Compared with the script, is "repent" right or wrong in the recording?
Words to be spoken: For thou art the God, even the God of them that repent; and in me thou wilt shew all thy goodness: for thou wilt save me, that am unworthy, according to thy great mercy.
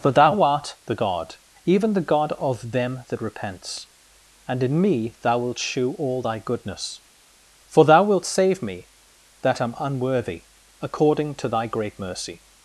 wrong